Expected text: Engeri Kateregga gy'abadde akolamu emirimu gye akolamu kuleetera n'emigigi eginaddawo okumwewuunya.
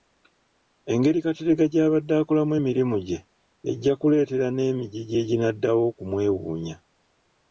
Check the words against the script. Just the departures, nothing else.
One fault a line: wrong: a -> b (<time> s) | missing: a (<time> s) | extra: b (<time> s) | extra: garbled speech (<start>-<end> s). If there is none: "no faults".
wrong: akolamu -> ejja (3.7 s)